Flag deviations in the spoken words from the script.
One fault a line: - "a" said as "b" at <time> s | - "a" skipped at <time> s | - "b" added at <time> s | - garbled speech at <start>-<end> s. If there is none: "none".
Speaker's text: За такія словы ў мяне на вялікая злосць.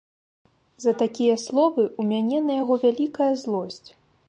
- "яго" added at 2.6 s